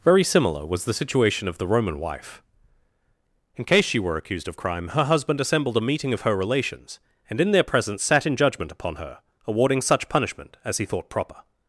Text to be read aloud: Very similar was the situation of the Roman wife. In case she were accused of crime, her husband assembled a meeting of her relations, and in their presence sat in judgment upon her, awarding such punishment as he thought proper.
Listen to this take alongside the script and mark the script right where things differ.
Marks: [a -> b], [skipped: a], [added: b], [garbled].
Very similar was the situation of the Roman wife. In case she were accused of crime, her husband assembled a meeting of her relations, and in their presence sat in judgment upon her, awarding such punishment as he thought proper.